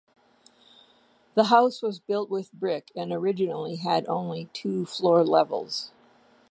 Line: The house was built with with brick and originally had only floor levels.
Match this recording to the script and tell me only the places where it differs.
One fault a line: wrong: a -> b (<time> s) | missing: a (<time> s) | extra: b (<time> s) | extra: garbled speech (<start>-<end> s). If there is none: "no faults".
missing: with (2.5 s)
extra: two (4.5 s)